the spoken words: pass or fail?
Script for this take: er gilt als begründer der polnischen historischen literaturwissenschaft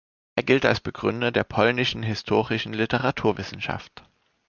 pass